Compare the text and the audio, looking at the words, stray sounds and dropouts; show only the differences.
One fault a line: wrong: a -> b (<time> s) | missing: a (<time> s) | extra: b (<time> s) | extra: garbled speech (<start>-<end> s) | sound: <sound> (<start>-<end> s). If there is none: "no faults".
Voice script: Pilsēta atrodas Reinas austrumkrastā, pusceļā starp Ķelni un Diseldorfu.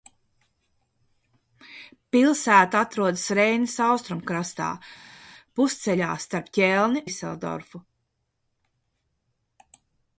missing: un (7.0 s)